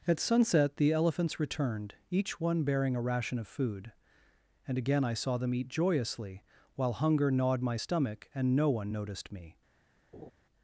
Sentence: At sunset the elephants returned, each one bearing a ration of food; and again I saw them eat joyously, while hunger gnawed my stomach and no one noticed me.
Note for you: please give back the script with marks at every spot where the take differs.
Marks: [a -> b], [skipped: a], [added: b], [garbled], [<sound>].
At sunset the elephants returned, each one bearing a ration of food; and again I saw them eat joyously, while hunger gnawed my stomach and no one noticed me. [laugh]